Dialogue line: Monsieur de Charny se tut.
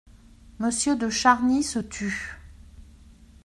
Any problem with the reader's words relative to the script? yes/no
no